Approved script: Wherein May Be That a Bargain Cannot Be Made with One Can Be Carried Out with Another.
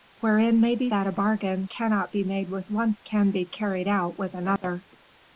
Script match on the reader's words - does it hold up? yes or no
yes